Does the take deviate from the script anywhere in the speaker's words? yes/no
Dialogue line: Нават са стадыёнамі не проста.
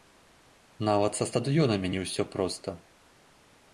yes